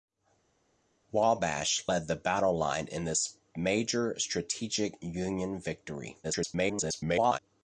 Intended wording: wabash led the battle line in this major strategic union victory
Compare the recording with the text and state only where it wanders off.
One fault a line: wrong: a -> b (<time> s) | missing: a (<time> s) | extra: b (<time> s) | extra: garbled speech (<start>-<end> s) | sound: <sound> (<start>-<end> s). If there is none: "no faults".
extra: garbled speech (6.2-7.4 s)